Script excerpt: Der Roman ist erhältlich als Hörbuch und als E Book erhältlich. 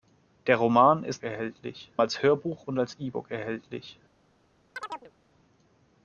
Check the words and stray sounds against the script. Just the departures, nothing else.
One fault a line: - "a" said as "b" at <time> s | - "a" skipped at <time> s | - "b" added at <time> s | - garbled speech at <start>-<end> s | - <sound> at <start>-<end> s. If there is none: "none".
- chirp at 4.8-5.1 s